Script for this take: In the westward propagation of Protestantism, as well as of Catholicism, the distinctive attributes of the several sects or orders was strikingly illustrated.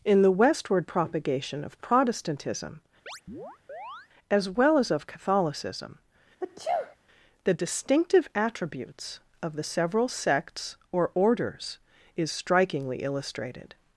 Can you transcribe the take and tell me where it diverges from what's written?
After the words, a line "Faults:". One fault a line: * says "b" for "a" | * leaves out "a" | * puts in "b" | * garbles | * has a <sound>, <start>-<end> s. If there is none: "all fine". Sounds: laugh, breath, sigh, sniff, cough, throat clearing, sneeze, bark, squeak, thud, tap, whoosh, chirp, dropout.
In the westward propagation of Protestantism, as well as of Catholicism, the distinctive attributes of the several sects or orders is strikingly illustrated.
Faults:
* has a chirp, 3.1-4.1 s
* has a sneeze, 6.4-7.0 s
* says "is" for "was"